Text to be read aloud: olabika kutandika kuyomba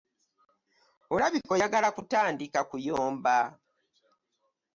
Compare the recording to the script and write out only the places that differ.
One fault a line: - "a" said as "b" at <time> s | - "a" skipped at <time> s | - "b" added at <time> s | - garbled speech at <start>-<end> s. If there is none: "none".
- "oyagala" added at 1.5 s